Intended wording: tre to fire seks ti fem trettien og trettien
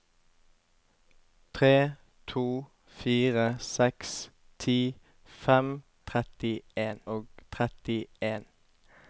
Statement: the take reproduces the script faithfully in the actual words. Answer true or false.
true